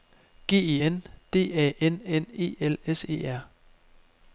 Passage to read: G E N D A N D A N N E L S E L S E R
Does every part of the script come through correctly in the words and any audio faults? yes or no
no